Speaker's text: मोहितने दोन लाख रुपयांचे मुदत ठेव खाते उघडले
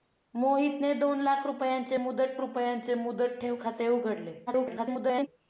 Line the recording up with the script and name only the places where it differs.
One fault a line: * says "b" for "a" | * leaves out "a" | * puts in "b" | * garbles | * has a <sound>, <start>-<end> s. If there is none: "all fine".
* puts in "रुपयांचे मुदत"
* garbles